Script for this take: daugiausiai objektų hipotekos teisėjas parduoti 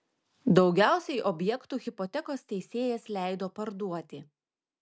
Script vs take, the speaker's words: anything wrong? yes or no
yes